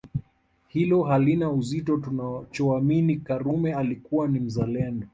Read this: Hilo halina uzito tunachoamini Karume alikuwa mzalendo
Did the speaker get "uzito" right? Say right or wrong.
right